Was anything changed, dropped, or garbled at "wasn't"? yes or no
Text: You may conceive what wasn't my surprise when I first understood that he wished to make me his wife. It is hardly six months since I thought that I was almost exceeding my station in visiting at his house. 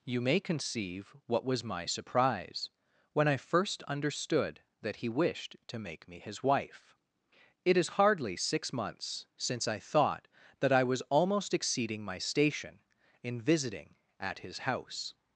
yes